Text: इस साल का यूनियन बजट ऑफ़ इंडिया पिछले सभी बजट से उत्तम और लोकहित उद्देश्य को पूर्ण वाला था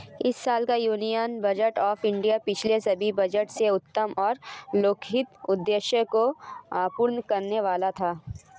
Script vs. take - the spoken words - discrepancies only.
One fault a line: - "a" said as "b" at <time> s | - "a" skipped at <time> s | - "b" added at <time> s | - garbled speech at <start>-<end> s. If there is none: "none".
- "करने" added at 7.2 s